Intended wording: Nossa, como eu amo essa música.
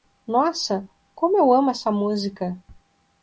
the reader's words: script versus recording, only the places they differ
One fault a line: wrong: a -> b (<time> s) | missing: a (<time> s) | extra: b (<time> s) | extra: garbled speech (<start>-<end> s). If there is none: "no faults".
no faults